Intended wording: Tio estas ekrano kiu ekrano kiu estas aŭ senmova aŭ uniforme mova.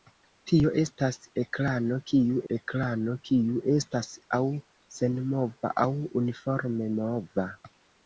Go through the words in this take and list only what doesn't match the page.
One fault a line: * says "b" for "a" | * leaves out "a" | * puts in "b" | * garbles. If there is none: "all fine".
all fine